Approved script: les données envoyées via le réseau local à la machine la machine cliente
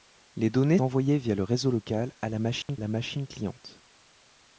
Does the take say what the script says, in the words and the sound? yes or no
no